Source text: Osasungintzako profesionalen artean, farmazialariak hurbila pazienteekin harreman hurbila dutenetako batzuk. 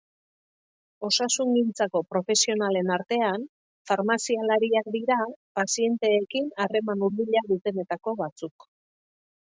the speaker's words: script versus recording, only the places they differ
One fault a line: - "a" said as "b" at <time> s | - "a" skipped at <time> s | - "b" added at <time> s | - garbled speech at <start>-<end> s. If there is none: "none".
- "hurbila" said as "dira" at 5.0 s